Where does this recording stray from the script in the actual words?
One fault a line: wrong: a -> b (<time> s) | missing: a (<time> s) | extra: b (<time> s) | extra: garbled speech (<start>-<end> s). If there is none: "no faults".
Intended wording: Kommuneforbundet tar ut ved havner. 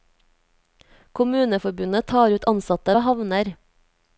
extra: ansatte (2.5 s)